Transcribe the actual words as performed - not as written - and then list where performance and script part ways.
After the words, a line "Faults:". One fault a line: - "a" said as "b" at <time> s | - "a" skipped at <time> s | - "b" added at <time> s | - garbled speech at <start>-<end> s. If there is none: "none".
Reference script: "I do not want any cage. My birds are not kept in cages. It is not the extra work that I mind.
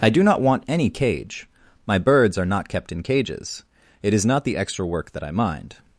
"I do not want any cage. My birds are not kept in cages. It is not the extra work that I mind.
Faults:
none